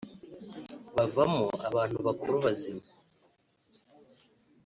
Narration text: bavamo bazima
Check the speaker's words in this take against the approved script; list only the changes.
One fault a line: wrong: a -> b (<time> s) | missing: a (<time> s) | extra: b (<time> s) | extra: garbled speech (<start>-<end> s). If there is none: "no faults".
extra: abantu bakuru (1.7 s)